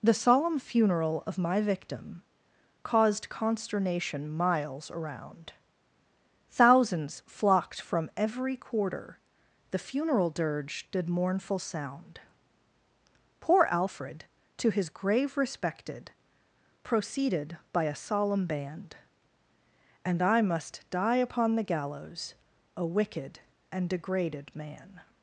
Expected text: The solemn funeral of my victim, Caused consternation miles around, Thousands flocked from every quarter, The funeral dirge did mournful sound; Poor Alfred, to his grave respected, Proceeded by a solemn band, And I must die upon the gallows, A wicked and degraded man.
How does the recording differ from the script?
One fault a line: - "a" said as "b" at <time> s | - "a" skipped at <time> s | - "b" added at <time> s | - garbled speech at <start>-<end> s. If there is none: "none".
none